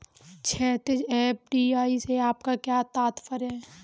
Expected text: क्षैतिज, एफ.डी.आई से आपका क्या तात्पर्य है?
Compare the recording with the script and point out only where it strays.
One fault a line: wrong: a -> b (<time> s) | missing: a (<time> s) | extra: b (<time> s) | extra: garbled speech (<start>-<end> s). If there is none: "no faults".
no faults